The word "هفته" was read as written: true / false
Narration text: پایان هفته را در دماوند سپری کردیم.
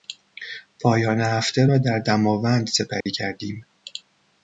true